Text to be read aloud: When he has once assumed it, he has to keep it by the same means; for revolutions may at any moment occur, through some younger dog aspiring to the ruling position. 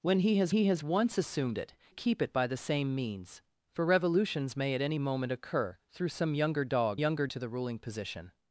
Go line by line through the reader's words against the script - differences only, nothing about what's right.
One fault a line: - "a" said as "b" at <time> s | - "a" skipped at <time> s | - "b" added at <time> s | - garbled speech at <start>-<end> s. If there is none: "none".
- "he has" added at 0.5 s
- "he has to" skipped at 1.7 s
- "aspiring" said as "younger" at 7.0 s